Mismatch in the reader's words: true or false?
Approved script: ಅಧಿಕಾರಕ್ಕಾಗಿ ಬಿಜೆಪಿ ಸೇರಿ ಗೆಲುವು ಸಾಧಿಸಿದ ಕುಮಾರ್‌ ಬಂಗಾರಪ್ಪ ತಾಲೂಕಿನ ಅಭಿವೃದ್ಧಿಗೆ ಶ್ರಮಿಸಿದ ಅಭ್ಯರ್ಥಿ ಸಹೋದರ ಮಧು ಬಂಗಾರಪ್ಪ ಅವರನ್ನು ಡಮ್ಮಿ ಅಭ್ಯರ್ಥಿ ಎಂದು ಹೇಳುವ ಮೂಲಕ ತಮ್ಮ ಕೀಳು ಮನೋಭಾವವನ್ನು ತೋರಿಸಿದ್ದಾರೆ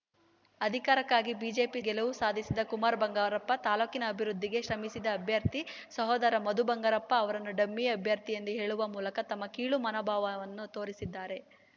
true